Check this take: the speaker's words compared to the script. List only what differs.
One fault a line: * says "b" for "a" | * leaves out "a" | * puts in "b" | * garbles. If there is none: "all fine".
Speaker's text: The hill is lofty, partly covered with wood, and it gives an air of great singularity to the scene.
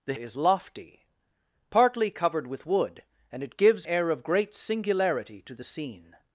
* leaves out "hill"
* leaves out "an"